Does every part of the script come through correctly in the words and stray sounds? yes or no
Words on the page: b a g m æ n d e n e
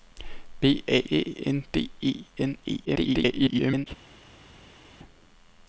no